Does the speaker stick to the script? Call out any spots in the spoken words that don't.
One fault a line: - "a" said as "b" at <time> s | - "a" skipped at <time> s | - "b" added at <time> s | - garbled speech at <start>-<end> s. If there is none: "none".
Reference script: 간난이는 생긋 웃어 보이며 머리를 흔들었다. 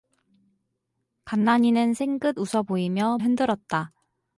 - "머리를" skipped at 3.2 s